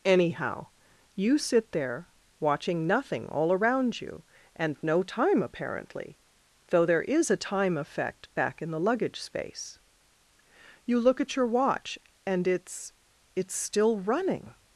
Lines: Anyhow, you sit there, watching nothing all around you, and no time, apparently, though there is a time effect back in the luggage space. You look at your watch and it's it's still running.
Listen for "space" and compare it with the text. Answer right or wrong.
right